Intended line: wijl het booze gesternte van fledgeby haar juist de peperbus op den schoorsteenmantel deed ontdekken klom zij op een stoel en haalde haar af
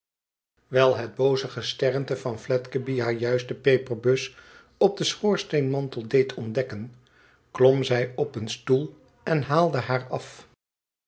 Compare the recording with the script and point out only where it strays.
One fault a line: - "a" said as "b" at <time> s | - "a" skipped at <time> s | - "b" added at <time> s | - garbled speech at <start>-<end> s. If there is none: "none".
none